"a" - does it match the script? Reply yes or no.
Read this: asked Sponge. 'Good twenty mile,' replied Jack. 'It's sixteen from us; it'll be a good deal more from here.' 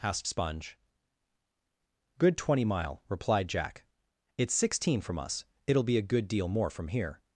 yes